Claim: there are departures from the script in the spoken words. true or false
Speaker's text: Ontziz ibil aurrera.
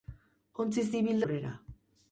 false